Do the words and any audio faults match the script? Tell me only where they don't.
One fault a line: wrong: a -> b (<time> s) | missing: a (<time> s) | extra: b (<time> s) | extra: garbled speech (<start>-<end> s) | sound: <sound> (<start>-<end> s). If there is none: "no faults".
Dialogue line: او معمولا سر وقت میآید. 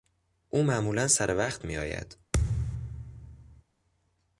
sound: thud (2.3-3.6 s)